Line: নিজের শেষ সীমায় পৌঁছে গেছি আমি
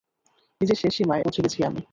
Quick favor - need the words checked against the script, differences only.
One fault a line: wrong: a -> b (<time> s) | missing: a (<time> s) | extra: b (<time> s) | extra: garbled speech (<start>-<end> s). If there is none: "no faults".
no faults